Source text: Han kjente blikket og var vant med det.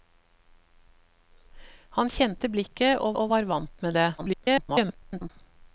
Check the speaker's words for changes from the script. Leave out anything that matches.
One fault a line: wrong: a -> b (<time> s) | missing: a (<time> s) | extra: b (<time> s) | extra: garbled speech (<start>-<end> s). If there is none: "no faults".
extra: og (3.2 s)
extra: garbled speech (4.2-5.3 s)